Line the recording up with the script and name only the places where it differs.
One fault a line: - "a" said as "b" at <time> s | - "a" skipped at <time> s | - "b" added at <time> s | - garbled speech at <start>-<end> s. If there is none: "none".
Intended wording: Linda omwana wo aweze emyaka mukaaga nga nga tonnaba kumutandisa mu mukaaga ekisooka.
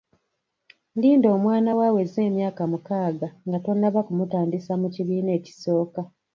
- "nga" skipped at 3.6 s
- "mukaaga" said as "kibiina" at 5.0 s